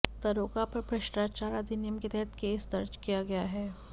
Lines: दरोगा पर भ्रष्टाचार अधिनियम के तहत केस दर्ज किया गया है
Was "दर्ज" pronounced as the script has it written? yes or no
yes